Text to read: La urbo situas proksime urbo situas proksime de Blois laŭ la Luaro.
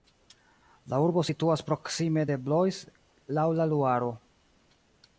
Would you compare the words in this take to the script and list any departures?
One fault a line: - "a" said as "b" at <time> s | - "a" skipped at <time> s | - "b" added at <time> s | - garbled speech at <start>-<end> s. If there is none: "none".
- "urbo situas proksime" skipped at 2.2 s